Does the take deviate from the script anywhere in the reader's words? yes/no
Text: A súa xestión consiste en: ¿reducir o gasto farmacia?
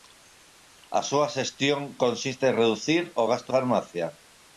no